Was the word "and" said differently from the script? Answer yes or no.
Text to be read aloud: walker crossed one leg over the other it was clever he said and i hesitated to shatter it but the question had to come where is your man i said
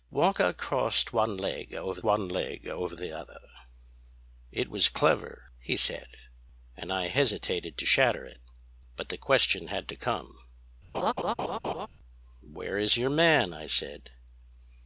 no